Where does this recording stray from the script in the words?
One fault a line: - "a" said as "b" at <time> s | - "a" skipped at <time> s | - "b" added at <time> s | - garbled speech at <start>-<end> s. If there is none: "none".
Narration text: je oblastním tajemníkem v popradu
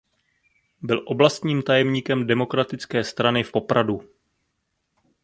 - "je" said as "byl" at 0.8 s
- "demokratické strany" added at 2.3 s